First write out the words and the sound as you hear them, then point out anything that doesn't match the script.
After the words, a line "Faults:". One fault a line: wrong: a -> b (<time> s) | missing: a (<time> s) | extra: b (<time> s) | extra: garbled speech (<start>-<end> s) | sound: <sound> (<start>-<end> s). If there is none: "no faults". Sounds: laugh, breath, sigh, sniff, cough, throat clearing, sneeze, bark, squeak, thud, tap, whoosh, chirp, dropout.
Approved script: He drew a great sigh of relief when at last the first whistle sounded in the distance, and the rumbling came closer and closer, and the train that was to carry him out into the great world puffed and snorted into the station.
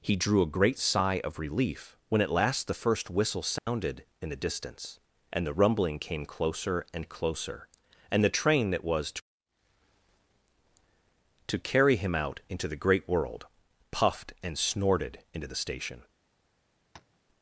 He drew a great sigh of relief when at last the first whistle sounded in the distance, and the rumbling came closer and closer, and the train that was to to carry him out into the great world puffed and snorted into the station.
Faults:
sound: dropout (3.6-3.7 s)
extra: to (11.5 s)
sound: tap (16.9-17.2 s)